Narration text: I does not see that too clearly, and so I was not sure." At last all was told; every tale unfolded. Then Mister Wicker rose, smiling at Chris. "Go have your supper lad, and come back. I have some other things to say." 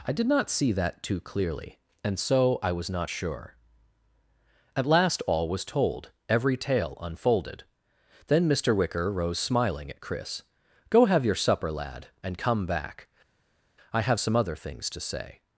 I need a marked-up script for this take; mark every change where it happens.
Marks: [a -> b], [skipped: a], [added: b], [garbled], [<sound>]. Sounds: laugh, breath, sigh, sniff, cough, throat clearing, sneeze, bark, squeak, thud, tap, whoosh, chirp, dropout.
I [does -> did] not see that too clearly, and so I was not sure." At last all was told; every tale unfolded. Then Mister Wicker rose, smiling at Chris. "Go have your supper lad, and come back. I have some other things to say."